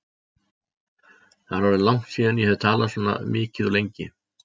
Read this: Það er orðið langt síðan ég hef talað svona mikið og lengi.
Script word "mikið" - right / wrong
right